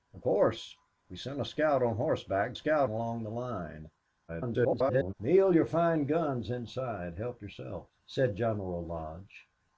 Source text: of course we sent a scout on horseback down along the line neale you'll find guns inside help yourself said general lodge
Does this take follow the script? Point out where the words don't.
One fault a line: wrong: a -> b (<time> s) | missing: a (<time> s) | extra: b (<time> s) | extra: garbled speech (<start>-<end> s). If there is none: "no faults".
wrong: down -> scout (2.5 s)
extra: garbled speech (4.3-5.1 s)